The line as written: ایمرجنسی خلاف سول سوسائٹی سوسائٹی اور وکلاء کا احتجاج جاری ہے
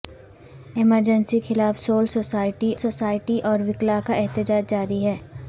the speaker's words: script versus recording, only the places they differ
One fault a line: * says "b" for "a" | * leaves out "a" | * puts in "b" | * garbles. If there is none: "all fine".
all fine